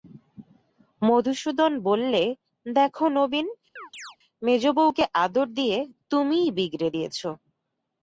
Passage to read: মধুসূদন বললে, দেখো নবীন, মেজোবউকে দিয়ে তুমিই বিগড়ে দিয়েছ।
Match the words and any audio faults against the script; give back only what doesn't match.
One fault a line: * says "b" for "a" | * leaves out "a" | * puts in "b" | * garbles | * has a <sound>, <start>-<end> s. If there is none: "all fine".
* has a chirp, 3.8-4.2 s
* puts in "আদর"